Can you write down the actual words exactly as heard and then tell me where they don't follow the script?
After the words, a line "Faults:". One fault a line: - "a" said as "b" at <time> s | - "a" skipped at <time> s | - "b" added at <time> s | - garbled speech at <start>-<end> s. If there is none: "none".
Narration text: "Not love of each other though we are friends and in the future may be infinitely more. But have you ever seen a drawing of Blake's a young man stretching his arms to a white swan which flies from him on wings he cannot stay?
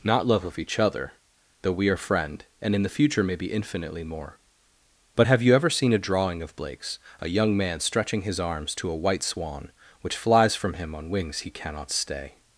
"Not love of each other though we are friend and in the future may be infinitely more. But have you ever seen a drawing of Blake's a young man stretching his arms to a white swan which flies from him on wings he cannot stay?
Faults:
- "friends" said as "friend" at 2.0 s